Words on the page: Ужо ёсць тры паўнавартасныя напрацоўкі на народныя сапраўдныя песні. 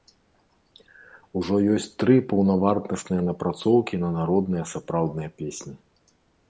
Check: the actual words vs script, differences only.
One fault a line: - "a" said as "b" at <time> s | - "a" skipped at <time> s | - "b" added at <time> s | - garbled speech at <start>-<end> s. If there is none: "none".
none